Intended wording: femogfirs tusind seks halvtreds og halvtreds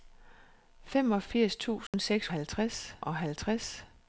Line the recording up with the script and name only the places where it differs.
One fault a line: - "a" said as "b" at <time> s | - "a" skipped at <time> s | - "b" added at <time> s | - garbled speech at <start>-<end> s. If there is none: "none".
none